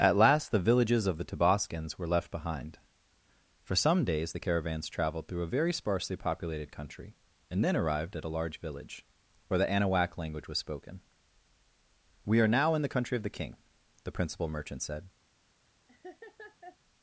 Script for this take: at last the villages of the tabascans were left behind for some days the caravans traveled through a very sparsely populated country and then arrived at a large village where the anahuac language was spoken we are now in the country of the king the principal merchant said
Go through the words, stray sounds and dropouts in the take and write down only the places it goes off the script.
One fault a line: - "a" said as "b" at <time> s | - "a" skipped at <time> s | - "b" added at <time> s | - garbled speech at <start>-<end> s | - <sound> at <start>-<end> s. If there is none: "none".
- laugh at 15.9-16.8 s